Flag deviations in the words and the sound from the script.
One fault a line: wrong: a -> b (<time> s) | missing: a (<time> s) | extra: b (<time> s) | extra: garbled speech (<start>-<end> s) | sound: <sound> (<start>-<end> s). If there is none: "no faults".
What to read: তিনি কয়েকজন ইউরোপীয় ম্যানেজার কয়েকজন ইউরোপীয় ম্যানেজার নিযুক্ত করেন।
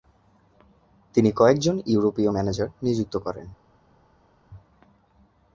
missing: কয়েকজন ইউরোপীয় ম্যানেজার (2.7 s)